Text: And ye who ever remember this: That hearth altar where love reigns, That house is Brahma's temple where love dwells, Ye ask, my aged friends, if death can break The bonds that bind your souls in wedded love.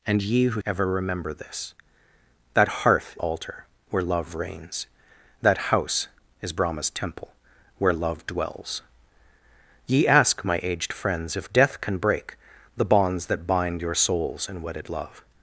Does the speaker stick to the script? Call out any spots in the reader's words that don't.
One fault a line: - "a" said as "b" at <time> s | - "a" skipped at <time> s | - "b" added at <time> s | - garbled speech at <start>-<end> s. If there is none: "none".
none